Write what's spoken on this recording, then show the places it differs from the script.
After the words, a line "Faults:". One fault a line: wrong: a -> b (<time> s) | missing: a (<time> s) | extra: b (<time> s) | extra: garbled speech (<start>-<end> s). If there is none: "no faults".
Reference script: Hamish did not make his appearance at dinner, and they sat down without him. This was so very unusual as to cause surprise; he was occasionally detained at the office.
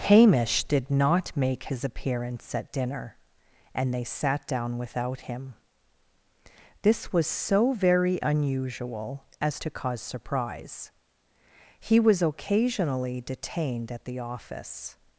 Hamish did not make his appearance at dinner, and they sat down without him. This was so very unusual as to cause surprise; he was occasionally detained at the office.
Faults:
no faults